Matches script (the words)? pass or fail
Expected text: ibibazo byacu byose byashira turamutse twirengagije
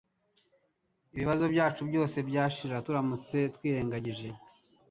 pass